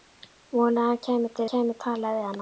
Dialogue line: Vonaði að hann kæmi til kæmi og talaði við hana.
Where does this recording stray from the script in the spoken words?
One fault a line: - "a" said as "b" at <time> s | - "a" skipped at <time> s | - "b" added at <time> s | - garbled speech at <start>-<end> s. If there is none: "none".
none